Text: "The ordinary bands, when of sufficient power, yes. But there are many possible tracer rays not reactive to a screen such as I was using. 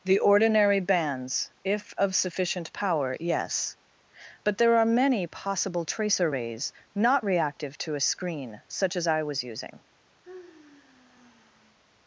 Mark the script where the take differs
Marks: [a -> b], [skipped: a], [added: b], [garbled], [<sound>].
"The ordinary bands, [when -> if] of sufficient power, yes. But there are many possible tracer rays not reactive to a screen such as I was using. [sigh]